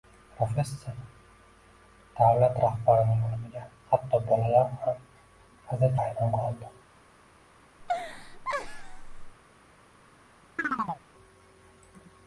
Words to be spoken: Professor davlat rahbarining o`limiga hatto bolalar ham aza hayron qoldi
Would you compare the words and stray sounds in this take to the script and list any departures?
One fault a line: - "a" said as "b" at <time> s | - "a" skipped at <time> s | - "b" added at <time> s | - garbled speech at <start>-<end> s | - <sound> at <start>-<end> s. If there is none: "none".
- laugh at 7.8-9.4 s
- chirp at 10.6-11.0 s